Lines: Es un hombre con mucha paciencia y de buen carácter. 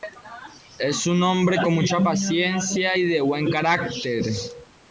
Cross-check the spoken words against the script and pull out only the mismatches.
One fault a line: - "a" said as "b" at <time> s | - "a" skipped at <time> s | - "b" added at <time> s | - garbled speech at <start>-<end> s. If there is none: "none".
none